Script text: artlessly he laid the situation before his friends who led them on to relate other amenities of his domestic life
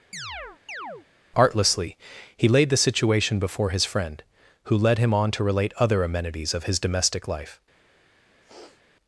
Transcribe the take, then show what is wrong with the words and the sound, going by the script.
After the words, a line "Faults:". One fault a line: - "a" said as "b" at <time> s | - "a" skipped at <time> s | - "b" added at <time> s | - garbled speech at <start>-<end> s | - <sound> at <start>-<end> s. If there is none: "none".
artlessly he laid the situation before his friend who led him on to relate other amenities of his domestic life
Faults:
- chirp at 0.1-1.1 s
- "friends" said as "friend" at 3.8 s
- "them" said as "him" at 5.0 s
- sniff at 8.4-8.8 s